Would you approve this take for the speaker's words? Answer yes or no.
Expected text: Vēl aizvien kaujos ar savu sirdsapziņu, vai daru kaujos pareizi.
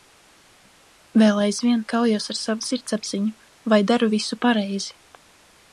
no